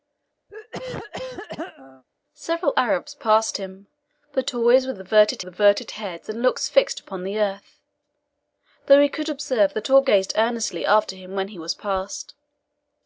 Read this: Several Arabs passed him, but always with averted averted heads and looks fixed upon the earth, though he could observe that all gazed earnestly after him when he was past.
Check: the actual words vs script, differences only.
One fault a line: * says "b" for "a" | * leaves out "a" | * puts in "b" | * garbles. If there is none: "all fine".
all fine